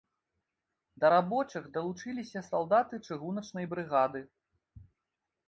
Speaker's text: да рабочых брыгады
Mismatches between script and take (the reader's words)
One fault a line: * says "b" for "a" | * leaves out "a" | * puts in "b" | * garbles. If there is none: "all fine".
* puts in "далучыліся салдаты чыгуначнай"